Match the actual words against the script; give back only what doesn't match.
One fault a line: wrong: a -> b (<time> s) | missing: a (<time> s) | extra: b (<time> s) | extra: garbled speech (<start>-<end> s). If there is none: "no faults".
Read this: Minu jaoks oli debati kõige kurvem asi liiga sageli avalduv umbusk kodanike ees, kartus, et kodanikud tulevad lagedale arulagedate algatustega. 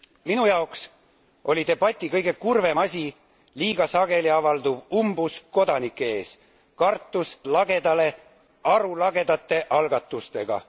missing: et kodanikud tulevad (7.4 s)